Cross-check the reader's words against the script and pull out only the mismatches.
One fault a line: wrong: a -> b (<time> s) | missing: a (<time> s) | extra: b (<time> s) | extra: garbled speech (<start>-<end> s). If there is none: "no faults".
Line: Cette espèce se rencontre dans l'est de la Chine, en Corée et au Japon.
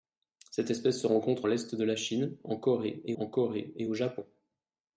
missing: dans (1.5 s)
extra: en Corée et (3.1 s)